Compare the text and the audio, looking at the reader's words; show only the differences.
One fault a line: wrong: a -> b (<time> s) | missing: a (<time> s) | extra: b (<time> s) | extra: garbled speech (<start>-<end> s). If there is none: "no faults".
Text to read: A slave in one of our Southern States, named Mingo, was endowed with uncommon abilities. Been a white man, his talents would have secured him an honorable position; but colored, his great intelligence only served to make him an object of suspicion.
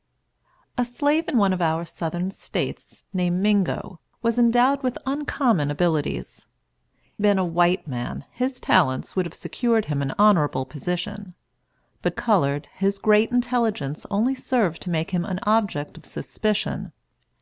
no faults